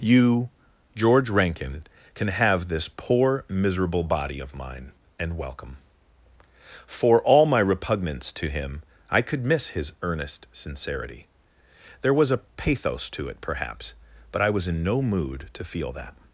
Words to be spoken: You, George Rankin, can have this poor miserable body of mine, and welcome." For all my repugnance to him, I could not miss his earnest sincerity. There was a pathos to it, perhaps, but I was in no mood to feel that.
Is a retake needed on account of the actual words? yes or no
yes